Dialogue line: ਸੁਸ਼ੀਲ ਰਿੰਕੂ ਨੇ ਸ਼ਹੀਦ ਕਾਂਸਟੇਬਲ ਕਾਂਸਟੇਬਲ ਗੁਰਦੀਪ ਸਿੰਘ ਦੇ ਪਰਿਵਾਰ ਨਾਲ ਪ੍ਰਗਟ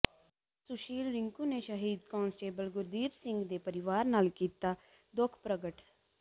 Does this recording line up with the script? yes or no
no